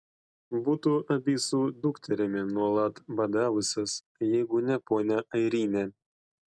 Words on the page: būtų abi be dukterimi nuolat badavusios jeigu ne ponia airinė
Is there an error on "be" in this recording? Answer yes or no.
yes